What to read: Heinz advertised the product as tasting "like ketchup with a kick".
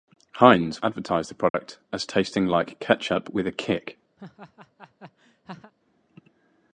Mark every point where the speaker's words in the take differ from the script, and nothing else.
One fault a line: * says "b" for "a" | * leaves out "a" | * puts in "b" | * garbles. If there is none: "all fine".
all fine